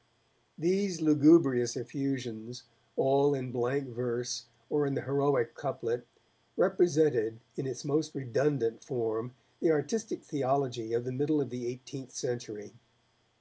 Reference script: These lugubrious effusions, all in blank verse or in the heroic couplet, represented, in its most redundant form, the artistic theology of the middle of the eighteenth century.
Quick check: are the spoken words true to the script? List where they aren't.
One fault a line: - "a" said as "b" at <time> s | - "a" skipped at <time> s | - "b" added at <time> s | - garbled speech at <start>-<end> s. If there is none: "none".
none